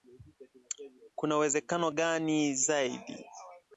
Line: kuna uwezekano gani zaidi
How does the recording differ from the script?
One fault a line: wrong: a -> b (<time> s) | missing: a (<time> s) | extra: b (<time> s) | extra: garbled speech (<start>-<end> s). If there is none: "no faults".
no faults